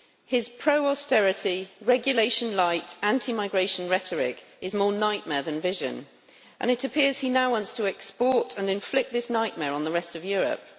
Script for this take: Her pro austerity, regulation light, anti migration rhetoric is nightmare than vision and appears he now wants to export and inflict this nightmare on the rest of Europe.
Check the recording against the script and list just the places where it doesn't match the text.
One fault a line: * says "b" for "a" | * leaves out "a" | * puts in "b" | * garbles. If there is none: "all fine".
* says "His" for "Her"
* puts in "more"
* puts in "it"